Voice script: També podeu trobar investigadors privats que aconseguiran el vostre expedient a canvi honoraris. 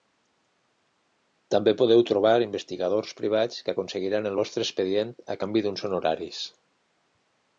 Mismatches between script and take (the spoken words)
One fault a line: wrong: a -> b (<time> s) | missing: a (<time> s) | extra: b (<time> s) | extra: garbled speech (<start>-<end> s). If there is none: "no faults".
extra: d'uns (5.7 s)